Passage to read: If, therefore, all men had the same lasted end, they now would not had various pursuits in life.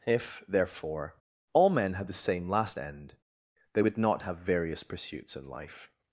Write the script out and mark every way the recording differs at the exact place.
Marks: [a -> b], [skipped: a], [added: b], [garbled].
If, therefore, all men had the same [lasted -> last] end, they [skipped: now] would not [had -> have] various pursuits in life.